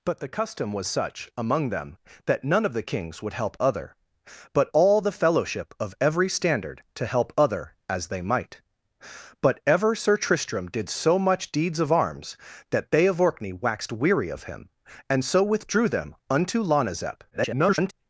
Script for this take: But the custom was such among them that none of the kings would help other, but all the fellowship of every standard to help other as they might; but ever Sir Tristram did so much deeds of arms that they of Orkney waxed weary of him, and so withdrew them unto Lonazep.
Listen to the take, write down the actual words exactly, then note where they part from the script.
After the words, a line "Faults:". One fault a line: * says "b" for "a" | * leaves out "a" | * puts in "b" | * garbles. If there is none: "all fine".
But the custom was such among them that none of the kings would help other, but all the fellowship of every standard to help other as they might; but ever Sir Tristram did so much deeds of arms that they of Orkney waxed weary of him, and so withdrew them unto Lonazep. [garbled]
Faults:
* garbles